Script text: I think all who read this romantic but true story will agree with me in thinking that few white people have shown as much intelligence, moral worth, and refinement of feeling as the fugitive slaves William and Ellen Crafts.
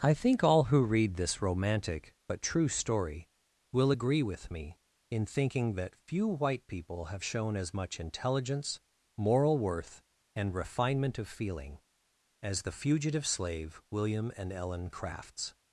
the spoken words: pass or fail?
fail